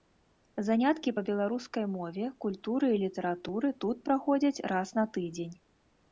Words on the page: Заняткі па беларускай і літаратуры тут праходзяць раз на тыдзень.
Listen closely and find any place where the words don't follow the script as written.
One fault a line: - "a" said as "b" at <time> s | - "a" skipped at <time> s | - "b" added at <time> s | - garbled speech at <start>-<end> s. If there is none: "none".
- "мове культуры" added at 1.9 s